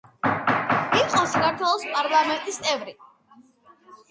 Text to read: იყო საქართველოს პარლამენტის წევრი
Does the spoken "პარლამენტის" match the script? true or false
true